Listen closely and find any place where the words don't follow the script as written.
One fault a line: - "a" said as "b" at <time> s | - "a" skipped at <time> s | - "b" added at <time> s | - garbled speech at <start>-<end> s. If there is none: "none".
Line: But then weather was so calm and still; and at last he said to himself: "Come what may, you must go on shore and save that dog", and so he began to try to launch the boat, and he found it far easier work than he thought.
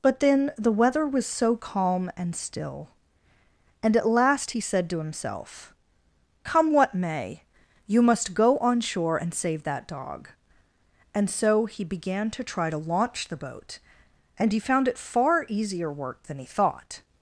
- "the" added at 0.6 s